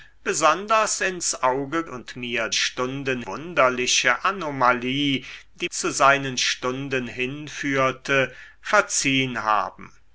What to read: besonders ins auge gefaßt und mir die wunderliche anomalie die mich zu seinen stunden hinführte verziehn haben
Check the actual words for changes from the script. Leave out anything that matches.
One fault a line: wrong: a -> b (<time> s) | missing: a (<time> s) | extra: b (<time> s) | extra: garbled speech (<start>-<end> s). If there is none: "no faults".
missing: gefaßt (1.8 s)
wrong: die -> stunden (2.5 s)
missing: mich (5.7 s)